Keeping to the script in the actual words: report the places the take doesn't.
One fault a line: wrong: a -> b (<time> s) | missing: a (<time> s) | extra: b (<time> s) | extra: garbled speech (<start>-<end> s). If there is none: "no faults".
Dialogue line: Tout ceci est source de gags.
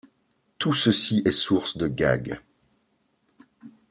no faults